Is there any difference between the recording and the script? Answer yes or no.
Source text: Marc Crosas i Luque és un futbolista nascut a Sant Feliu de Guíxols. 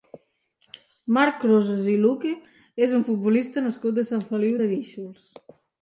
no